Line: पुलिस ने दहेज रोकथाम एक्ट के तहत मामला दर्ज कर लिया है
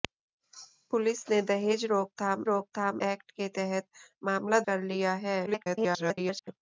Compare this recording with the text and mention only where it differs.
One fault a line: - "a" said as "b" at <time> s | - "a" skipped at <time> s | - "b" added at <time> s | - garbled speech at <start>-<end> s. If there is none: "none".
- "रोकथाम" added at 2.4 s
- "दर्ज" skipped at 4.6 s
- garbled speech at 5.5-6.5 s